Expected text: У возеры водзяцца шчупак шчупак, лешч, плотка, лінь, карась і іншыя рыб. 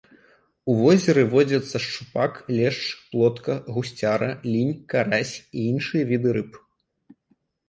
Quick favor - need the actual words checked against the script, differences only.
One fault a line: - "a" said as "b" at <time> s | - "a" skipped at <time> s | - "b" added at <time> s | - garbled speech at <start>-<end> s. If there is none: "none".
- "шчупак" skipped at 2.4 s
- "гусцяра" added at 3.8 s
- "віды" added at 6.1 s